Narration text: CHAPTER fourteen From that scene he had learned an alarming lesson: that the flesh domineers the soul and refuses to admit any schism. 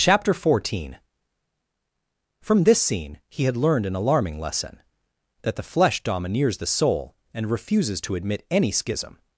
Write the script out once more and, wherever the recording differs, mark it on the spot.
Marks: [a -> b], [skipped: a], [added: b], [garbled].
CHAPTER fourteen From [that -> this] scene he had learned an alarming lesson: that the flesh domineers the soul and refuses to admit any schism.